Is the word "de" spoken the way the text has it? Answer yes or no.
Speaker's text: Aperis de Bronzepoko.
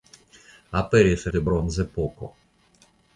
yes